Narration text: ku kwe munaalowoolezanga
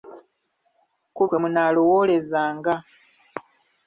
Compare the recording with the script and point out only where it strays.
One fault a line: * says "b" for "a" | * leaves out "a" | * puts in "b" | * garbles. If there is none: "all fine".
all fine